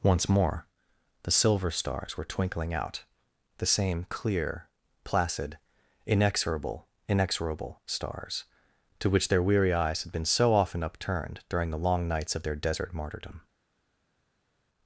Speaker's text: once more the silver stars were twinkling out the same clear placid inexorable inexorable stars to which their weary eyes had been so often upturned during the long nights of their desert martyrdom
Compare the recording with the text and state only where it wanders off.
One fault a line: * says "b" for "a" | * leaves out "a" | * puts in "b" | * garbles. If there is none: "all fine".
all fine